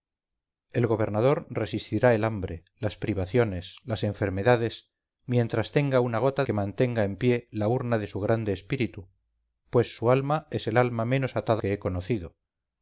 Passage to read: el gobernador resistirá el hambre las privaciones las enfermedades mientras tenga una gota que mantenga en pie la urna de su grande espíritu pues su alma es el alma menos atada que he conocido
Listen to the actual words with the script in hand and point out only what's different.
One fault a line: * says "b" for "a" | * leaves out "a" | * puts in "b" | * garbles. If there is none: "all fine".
all fine